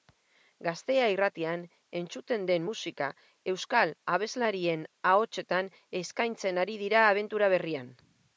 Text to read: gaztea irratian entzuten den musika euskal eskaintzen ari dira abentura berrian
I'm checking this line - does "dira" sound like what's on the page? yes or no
yes